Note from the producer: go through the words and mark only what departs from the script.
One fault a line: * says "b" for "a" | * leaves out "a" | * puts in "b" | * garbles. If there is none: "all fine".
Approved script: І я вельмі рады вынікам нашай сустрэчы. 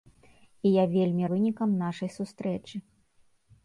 * leaves out "рады"